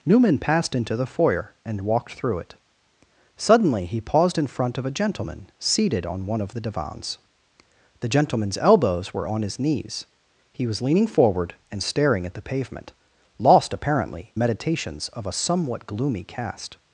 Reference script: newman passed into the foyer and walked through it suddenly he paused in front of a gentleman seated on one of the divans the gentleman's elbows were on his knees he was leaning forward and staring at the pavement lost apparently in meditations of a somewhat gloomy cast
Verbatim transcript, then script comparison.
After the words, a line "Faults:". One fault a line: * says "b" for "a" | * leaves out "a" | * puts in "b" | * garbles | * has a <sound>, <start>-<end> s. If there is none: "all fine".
newman passed into the foyer and walked through it suddenly he paused in front of a gentleman seated on one of the divans the gentleman's elbows were on his knees he was leaning forward and staring at the pavement lost apparently meditations of a somewhat gloomy cast
Faults:
* leaves out "in"